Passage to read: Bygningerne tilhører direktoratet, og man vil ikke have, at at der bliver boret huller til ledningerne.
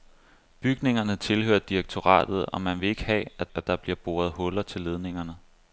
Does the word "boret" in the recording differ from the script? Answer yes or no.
no